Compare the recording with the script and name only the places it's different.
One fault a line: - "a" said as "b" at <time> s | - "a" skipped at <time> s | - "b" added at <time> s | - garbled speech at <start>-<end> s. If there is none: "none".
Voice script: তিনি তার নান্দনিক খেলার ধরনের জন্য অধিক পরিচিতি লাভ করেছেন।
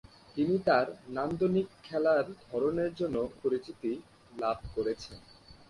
- "অধিক" skipped at 3.2 s